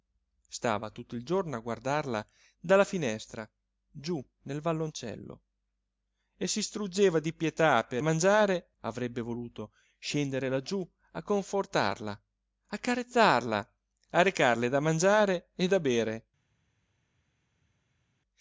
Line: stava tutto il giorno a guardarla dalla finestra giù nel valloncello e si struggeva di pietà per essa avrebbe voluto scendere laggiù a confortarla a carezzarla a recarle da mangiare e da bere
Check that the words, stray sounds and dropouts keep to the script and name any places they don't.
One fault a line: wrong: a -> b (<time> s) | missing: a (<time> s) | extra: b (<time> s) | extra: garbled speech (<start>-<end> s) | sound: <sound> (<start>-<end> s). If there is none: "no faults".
wrong: essa -> mangiare (8.0 s)